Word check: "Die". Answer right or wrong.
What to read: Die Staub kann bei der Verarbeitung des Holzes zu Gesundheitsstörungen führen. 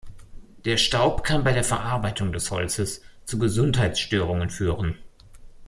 wrong